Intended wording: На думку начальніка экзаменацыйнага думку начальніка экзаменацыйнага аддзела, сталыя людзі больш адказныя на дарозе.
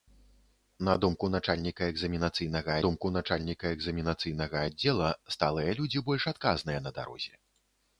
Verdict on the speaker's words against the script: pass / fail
pass